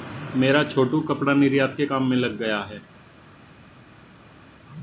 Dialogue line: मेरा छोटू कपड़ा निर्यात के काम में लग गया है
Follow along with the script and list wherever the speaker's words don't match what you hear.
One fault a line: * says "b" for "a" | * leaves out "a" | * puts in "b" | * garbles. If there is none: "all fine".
all fine